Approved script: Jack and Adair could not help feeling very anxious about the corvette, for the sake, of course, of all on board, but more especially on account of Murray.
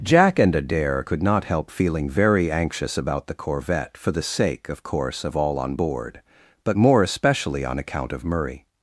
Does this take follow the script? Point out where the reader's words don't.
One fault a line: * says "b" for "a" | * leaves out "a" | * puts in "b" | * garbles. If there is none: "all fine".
all fine